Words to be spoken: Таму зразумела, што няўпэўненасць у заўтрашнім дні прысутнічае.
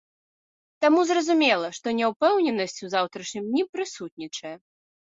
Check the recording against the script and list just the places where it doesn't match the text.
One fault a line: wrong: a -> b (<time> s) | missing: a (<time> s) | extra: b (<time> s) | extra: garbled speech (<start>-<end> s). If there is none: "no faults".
no faults